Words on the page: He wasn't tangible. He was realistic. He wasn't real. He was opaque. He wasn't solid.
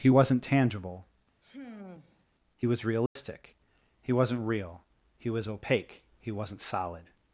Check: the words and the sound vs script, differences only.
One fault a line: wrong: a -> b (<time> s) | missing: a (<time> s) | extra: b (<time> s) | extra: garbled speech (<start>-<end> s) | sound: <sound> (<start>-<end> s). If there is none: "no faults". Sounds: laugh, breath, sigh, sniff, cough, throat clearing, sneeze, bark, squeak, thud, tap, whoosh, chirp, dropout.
sound: sigh (1.4-2.2 s)
sound: dropout (3.1-3.2 s)